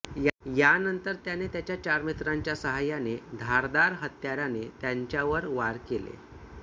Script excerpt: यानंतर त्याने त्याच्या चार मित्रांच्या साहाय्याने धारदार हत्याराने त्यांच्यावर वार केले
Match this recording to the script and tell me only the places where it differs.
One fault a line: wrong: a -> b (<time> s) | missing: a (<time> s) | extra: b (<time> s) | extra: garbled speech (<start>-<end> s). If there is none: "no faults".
no faults